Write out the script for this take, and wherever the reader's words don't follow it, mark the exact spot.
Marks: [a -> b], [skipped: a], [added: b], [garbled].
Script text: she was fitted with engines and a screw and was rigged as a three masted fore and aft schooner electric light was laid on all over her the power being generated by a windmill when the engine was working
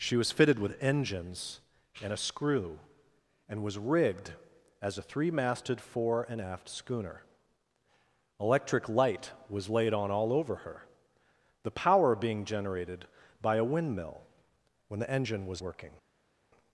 she was fitted with engines and a screw and was rigged as a three masted fore and aft schooner electric light was laid on all over her the power being generated by a windmill when the engine was working